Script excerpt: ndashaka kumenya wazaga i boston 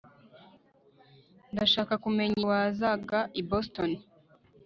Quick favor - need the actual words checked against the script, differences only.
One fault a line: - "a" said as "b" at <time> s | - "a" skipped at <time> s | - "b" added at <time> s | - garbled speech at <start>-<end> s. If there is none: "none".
none